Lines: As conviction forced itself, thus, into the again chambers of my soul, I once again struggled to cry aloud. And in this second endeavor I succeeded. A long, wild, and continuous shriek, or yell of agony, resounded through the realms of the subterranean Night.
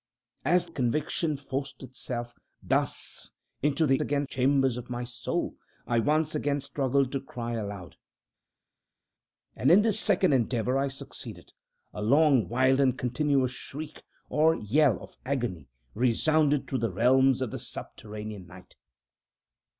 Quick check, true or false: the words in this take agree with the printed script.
true